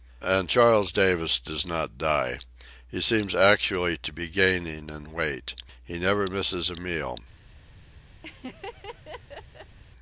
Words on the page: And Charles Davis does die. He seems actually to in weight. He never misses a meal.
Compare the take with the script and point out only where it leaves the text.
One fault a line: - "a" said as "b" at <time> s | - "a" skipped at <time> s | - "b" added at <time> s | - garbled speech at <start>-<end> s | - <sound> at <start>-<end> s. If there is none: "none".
- "not" added at 1.6 s
- "be gaining" added at 4.1 s
- laugh at 8.2-9.8 s